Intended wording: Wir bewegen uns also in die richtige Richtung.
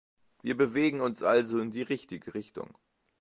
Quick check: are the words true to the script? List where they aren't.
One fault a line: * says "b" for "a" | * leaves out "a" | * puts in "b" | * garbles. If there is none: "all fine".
all fine